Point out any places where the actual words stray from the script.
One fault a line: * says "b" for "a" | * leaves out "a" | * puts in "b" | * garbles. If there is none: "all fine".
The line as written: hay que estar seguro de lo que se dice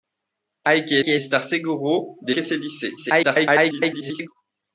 * puts in "que"
* leaves out "lo"
* garbles